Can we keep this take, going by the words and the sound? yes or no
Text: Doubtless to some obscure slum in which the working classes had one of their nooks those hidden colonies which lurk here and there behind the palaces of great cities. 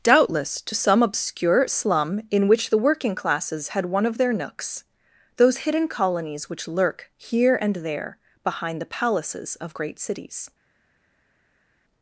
yes